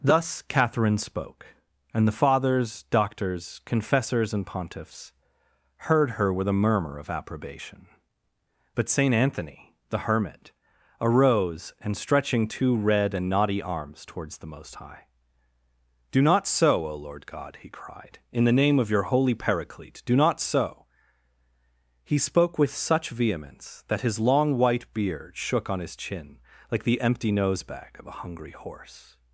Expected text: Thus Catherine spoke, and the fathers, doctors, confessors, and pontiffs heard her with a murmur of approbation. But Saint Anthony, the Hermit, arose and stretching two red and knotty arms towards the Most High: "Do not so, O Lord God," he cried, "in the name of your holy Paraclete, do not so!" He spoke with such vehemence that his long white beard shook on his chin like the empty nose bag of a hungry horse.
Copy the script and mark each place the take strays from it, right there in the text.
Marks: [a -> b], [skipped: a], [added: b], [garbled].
Thus Catherine spoke, and the fathers, doctors, confessors, and pontiffs heard her with a murmur of approbation. But Saint Anthony, the Hermit, arose and stretching two red and knotty arms towards the Most High: "Do not so, O Lord God," he cried, "in the name of your holy Paraclete, do not so!" He spoke with such vehemence that his long white beard shook on his chin like the empty nose bag of a hungry horse.